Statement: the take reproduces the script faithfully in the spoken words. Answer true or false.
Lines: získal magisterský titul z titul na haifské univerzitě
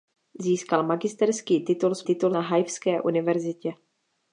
true